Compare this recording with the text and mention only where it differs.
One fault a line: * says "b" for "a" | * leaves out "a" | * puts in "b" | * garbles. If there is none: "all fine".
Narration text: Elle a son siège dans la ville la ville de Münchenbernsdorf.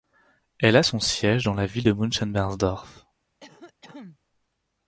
* leaves out "la ville"